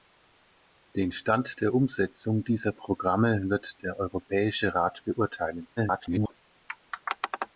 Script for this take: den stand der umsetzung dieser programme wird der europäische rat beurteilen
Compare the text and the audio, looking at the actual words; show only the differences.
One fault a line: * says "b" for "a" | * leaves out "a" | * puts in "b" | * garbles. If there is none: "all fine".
* garbles